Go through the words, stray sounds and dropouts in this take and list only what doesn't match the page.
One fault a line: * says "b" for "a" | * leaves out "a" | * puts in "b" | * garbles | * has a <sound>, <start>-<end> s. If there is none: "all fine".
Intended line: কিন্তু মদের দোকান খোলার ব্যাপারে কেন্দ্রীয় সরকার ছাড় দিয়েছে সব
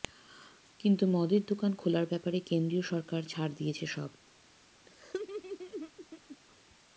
* has a laugh, 4.9-6.4 s